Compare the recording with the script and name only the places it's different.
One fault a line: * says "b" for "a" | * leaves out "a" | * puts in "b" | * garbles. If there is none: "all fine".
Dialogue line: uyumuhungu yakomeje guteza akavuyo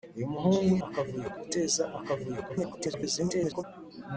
* says "akavuyo" for "yakomeje"
* garbles